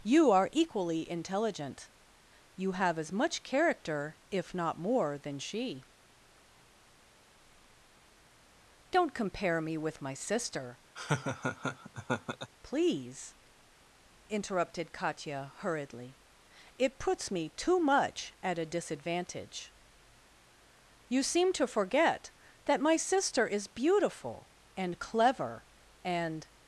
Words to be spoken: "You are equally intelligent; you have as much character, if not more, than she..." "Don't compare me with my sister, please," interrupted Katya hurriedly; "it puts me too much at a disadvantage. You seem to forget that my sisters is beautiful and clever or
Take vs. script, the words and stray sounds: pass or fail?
fail